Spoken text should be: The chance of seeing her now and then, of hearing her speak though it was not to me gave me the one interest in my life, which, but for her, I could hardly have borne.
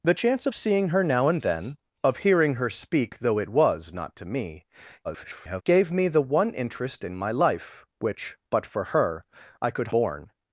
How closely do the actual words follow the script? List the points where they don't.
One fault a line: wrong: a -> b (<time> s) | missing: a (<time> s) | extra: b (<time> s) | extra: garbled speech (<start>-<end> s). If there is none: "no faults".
extra: garbled speech (5.0-5.6 s)
missing: hardly have (9.9 s)